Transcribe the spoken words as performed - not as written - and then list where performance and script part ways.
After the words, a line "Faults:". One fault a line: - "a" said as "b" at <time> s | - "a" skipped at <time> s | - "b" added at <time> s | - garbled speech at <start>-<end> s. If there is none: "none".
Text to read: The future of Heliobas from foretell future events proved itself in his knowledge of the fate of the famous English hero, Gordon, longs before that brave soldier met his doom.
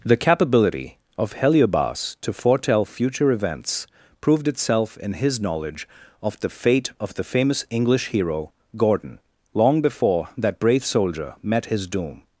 The capability of Heliobas to foretell future events proved itself in his knowledge of the fate of the famous English hero, Gordon, long before that brave soldier met his doom.
Faults:
- "future" said as "capability" at 0.2 s
- "from" said as "to" at 2.2 s
- "longs" said as "long" at 9.5 s